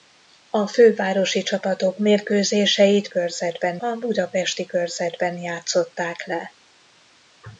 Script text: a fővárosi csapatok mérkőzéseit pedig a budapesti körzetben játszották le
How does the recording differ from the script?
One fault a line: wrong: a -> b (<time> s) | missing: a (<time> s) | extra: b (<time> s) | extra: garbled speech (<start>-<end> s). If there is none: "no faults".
wrong: pedig -> körzetben (3.1 s)